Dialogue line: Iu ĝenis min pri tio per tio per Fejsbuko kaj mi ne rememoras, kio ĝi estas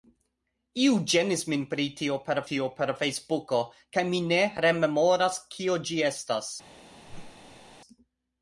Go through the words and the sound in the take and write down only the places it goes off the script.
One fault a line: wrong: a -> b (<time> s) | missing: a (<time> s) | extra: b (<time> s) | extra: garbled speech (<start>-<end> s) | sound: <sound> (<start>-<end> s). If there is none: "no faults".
sound: whoosh (7.1-7.8 s)